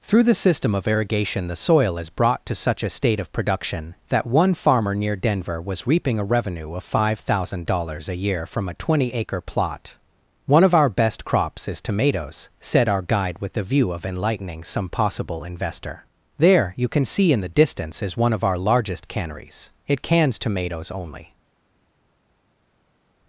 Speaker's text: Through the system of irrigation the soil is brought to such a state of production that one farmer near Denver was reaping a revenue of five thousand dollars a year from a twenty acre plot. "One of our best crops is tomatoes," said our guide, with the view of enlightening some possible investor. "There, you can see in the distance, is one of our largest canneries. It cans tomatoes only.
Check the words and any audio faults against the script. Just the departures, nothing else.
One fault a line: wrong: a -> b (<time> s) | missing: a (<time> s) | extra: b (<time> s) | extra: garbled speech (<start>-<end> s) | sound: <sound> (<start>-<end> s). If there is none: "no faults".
no faults